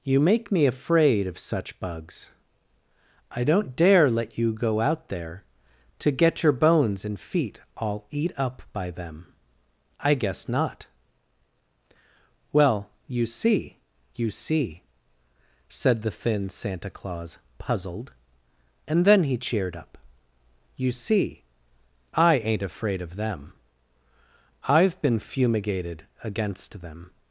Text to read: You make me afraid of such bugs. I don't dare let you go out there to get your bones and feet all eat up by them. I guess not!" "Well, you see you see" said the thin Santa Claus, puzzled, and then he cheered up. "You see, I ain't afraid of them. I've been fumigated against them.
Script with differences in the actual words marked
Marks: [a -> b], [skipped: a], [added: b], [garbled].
You make me afraid of such bugs. I don't dare let you go out there to get your bones and feet all eat up by them. I guess not!" "Well, you see you see" said the thin Santa Claus, puzzled, and then he cheered up. "You see, I ain't afraid of them. I've been fumigated against them.